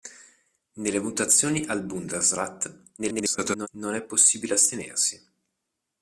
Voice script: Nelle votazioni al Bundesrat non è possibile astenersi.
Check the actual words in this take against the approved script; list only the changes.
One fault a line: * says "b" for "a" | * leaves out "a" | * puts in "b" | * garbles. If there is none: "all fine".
* garbles